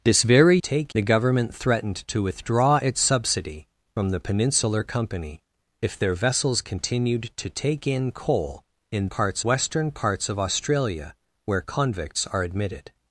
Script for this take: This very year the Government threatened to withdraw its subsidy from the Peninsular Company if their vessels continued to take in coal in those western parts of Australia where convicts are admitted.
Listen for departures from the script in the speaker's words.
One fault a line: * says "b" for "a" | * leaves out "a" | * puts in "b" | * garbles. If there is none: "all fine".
* says "take" for "year"
* says "parts" for "those"